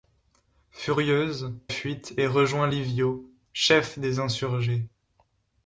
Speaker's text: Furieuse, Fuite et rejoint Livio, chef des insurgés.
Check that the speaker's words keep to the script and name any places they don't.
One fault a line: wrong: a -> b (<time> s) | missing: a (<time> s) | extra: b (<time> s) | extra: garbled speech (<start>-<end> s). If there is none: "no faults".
no faults